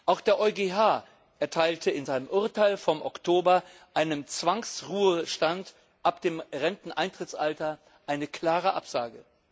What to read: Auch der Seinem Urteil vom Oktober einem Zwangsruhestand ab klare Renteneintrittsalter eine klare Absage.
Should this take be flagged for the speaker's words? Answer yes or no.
yes